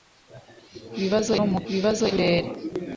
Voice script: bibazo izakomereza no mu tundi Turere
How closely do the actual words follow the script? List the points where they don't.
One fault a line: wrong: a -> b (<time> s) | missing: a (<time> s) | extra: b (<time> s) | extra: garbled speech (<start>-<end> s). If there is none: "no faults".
missing: izakomereza (1.3 s)
wrong: tundi -> bibazo (1.7 s)